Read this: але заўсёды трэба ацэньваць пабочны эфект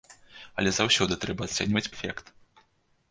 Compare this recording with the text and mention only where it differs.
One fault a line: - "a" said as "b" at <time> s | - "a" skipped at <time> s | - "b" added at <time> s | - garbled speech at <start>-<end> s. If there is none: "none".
- "пабочны" skipped at 1.9 s